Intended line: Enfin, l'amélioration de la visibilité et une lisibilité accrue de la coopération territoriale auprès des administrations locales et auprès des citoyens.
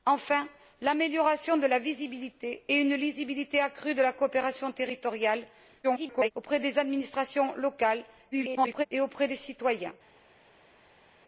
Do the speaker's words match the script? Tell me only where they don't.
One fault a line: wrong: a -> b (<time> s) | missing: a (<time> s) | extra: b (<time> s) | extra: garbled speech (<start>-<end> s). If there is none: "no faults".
extra: garbled speech (5.8-6.3 s)
extra: garbled speech (8.3-8.9 s)